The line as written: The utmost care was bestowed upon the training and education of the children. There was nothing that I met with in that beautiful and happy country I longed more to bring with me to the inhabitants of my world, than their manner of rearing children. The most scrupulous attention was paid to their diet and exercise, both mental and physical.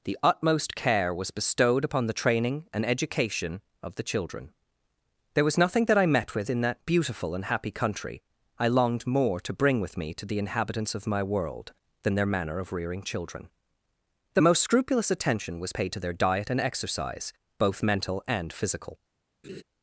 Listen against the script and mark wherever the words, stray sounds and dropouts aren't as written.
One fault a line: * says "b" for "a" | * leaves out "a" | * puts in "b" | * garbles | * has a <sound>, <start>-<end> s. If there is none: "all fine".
* has a laugh, 19.4-19.6 s